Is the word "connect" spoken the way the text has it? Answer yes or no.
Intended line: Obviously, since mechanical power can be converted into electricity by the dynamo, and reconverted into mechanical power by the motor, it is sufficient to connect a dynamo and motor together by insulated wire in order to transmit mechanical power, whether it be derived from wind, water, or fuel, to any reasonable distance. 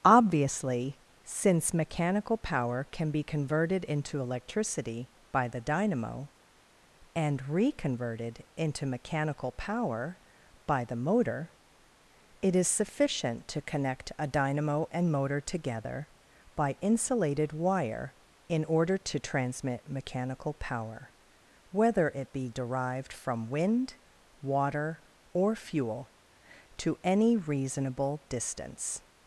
yes